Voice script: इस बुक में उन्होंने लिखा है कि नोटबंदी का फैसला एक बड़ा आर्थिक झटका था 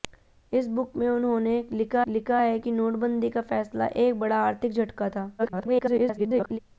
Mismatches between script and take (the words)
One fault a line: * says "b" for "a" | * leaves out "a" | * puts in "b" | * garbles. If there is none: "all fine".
* puts in "लिखा"
* garbles